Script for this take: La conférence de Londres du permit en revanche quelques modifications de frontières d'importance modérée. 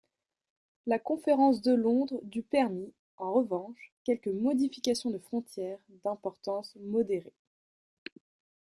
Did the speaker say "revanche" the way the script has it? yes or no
yes